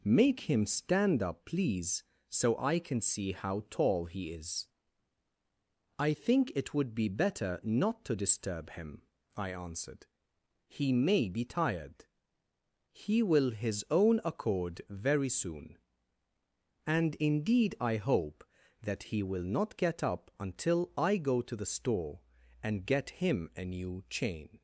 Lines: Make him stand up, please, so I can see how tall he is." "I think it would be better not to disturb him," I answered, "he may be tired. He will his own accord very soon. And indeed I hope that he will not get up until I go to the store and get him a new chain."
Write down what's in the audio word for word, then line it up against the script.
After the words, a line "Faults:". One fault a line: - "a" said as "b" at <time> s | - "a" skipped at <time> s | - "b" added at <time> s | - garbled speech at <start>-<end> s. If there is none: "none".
Make him stand up, please, so I can see how tall he is." "I think it would be better not to disturb him," I answered, "he may be tired. He will his own accord very soon. And indeed I hope that he will not get up until I go to the store and get him a new chain."
Faults:
none